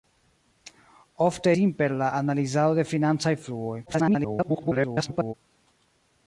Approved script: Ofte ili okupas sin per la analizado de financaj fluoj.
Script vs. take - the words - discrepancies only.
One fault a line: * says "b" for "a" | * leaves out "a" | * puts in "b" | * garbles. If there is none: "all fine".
* leaves out "ili okupas"
* garbles